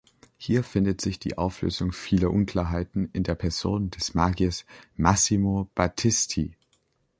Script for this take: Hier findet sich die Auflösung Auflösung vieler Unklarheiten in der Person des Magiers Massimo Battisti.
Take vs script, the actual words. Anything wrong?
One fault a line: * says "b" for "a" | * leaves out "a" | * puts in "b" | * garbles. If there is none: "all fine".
* leaves out "Auflösung"